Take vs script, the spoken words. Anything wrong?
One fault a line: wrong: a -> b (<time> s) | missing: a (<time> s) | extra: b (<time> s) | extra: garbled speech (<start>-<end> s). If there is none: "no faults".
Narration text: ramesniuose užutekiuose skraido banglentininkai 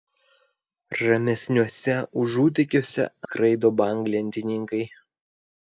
no faults